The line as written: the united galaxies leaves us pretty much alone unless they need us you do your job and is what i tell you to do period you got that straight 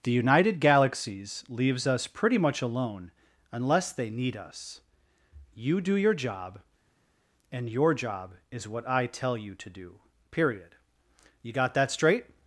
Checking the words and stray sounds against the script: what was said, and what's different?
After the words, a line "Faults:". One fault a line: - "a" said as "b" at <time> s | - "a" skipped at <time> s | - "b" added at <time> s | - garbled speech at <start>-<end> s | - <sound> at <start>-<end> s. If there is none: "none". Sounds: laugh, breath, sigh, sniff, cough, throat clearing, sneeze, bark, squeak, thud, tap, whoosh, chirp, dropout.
the united galaxies leaves us pretty much alone unless they need us you do your job and your job is what i tell you to do period you got that straight
Faults:
- "your job" added at 7.7 s